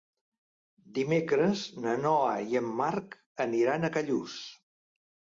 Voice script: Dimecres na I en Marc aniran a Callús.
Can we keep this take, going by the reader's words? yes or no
no